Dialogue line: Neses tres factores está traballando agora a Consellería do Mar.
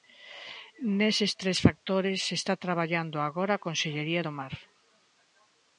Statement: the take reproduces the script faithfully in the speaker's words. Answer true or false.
true